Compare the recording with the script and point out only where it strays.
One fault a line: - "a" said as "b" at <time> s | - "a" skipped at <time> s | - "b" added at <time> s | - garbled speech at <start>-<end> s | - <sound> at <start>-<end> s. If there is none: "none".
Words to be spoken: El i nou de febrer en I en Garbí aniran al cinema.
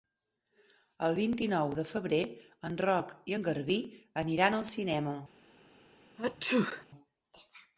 - "vint" added at 1.2 s
- "Roc" added at 2.9 s
- sneeze at 6.2-6.9 s